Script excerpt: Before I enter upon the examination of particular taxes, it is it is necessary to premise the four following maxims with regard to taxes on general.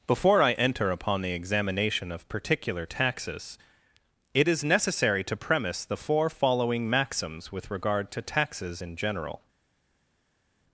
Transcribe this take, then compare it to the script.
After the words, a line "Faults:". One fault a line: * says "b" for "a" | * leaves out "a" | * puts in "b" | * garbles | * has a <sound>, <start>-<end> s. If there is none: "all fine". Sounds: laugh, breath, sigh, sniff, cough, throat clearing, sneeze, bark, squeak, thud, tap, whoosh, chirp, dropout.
Before I enter upon the examination of particular taxes, it is necessary to premise the four following maxims with regard to taxes in general.
Faults:
* leaves out "it is"
* says "in" for "on"